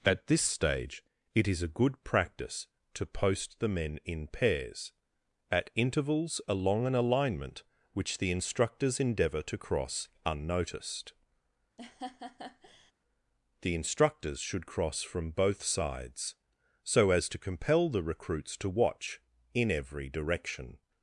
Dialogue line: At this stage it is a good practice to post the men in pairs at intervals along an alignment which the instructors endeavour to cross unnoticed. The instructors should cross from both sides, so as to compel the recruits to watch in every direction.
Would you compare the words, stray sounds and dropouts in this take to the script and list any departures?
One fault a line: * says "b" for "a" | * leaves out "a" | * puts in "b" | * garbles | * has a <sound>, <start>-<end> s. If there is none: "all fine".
* has a laugh, 11.8-12.9 s